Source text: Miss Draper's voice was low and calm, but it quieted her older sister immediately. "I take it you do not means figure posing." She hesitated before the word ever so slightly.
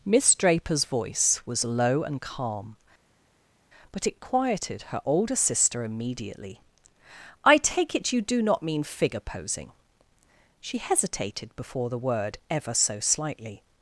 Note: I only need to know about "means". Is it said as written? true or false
false